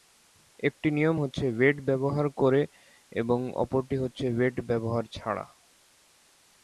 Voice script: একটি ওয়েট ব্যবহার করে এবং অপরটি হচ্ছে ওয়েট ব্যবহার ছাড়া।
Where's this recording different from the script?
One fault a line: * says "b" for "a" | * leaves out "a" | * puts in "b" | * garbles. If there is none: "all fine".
* puts in "নিয়ম হচ্ছে"